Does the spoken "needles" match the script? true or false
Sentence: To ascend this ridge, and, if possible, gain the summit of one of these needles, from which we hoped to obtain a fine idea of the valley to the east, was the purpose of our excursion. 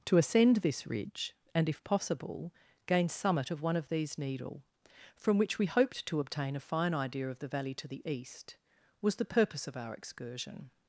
false